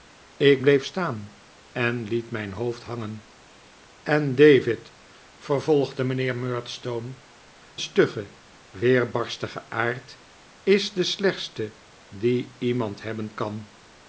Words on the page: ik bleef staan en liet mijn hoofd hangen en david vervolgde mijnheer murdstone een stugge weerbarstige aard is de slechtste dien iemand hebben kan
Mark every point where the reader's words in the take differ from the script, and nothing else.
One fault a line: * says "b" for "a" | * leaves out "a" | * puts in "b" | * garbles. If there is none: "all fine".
* leaves out "een"